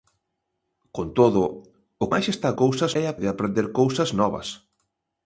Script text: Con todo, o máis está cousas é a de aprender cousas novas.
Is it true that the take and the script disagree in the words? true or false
false